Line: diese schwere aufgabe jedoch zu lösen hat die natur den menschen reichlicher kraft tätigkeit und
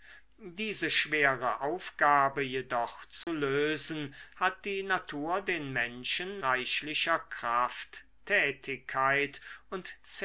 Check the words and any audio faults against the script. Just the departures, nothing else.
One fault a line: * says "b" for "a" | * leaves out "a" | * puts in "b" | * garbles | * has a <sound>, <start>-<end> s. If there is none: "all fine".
* has a dropout, 3.2-3.3 s